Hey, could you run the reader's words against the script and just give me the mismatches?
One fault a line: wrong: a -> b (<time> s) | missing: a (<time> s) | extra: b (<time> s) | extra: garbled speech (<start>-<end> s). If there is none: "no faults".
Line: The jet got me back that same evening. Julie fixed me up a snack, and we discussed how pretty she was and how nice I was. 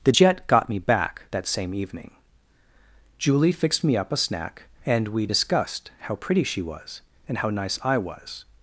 no faults